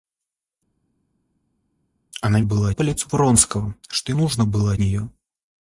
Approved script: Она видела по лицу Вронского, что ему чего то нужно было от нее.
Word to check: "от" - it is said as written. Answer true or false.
false